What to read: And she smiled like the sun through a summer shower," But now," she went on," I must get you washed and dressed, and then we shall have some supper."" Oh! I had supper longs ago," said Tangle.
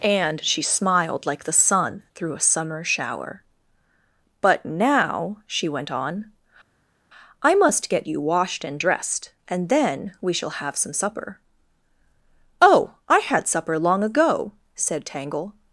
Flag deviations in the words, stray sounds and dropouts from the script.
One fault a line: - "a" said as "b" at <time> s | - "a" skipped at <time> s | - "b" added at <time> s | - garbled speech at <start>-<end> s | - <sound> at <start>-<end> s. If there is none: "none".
- "longs" said as "long" at 13.8 s